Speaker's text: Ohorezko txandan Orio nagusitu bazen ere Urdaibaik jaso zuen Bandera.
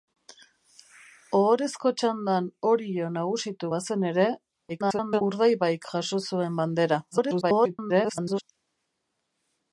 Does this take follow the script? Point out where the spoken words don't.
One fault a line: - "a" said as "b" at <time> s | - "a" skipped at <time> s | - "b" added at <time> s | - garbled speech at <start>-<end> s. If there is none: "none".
- garbled speech at 4.7-5.2 s
- garbled speech at 7.1-8.4 s